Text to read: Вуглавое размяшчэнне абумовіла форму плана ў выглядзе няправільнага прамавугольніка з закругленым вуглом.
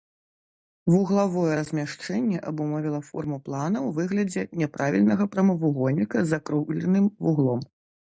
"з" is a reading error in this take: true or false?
false